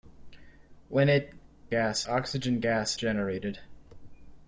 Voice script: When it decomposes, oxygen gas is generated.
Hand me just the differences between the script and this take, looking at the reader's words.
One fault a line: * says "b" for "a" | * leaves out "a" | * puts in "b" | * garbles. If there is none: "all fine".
* says "gas" for "decomposes"
* leaves out "is"